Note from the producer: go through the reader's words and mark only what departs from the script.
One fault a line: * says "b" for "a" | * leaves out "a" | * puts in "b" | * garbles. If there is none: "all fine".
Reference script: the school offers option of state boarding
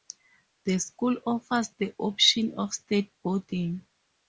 * puts in "the"